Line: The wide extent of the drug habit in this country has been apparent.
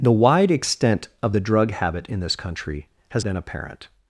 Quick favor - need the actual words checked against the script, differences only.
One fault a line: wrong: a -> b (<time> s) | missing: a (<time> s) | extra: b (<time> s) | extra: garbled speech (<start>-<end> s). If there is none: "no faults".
no faults